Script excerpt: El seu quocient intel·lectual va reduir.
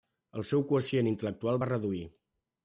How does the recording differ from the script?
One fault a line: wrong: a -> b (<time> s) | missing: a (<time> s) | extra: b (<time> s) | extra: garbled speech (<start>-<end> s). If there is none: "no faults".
no faults